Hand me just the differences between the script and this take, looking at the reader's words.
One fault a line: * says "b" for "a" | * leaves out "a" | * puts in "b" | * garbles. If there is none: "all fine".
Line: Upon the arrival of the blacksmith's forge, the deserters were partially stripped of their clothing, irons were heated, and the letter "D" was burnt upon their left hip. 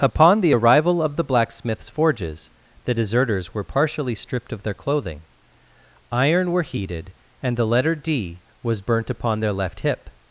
* says "forges" for "forge"
* says "iron" for "irons"